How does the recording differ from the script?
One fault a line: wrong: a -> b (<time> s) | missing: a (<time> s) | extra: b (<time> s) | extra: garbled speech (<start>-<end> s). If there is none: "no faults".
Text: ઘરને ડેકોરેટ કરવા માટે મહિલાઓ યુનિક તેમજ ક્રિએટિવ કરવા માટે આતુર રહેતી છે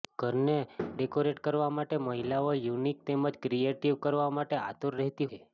no faults